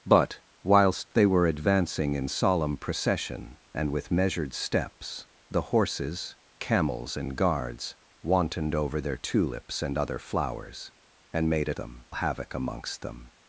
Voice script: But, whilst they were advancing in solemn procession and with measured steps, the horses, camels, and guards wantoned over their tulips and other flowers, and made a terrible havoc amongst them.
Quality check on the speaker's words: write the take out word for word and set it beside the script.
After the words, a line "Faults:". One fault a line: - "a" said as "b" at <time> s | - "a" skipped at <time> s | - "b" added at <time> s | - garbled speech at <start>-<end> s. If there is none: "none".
But, whilst they were advancing in solemn procession and with measured steps, the horses, camels, and guards wantoned over their tulips and other flowers, and made a them havoc amongst them.
Faults:
- "terrible" said as "them" at 11.7 s